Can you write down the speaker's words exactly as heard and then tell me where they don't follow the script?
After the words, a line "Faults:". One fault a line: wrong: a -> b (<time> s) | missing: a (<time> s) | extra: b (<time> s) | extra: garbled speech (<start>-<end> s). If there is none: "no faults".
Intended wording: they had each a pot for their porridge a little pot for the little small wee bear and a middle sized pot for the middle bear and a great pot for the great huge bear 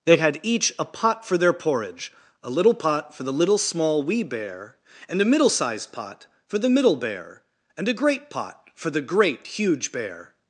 they had each a pot for their porridge a little pot for the little small wee bear and a middle sized pot for the middle bear and a great pot for the great huge bear
Faults:
no faults